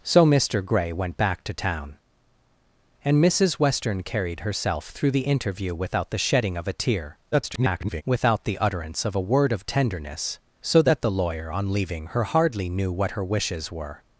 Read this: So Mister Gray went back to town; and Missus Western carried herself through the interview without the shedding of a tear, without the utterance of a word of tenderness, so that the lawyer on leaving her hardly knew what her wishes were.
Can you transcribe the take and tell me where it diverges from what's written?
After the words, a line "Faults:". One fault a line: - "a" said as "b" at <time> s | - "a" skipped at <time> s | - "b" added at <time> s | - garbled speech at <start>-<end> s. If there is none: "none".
So Mister Gray went back to town; and Missus Western carried herself through the interview without the shedding of a tear, [garbled] without the utterance of a word of tenderness, so that the lawyer on leaving her hardly knew what her wishes were.
Faults:
- garbled speech at 7.3-8.0 s